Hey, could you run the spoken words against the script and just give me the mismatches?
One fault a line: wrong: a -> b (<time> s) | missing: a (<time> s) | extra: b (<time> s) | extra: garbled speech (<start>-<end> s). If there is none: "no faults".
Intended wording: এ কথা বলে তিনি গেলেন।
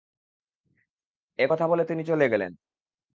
extra: চলে (2.0 s)